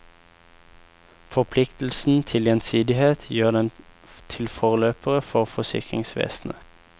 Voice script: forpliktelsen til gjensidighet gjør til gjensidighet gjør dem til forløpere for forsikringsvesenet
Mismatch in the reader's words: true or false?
true